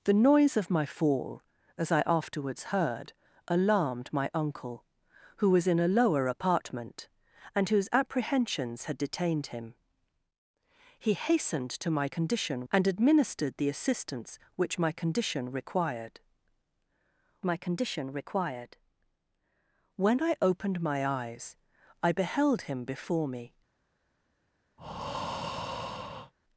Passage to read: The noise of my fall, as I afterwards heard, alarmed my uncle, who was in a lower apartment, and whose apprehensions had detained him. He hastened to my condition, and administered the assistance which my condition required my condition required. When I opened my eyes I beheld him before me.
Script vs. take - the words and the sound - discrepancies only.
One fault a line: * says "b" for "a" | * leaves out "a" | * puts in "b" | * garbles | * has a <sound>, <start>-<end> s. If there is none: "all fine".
* has a breath, 24.8-26.3 s